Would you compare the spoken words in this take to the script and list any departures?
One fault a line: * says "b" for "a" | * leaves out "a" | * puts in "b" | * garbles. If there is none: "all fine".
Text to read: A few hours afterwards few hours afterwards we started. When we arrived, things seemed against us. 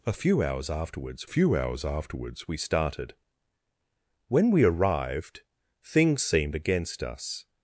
all fine